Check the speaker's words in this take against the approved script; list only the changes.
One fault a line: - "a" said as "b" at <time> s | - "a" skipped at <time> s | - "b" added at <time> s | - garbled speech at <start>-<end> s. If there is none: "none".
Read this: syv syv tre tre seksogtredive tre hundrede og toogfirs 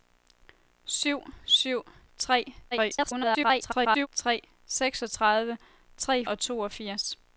- garbled speech at 2.7-4.1 s
- "hundrede" skipped at 6.2 s